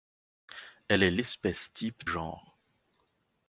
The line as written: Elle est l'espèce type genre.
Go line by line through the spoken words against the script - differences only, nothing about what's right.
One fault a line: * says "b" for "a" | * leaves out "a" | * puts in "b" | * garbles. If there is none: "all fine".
all fine